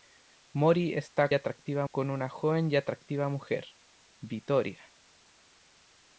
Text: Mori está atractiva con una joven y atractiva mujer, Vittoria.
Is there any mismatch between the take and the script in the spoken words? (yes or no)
no